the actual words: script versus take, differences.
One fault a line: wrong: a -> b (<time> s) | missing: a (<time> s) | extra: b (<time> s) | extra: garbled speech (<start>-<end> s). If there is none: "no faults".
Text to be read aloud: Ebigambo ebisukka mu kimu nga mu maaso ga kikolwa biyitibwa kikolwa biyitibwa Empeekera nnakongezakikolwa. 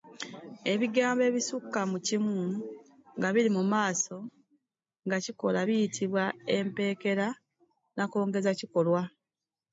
extra: biri (3.3 s)
missing: kikolwa biyitibwa (6.2 s)